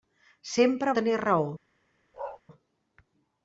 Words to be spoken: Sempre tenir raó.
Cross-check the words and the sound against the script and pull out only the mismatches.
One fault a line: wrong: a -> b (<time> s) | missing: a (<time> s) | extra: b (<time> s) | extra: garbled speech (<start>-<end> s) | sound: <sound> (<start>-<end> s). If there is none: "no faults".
sound: bark (2.1-2.4 s)